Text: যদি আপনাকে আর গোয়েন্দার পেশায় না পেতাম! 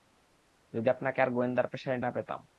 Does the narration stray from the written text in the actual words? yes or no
no